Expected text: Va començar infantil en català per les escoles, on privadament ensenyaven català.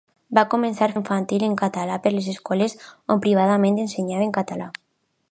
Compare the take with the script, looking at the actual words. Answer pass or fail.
pass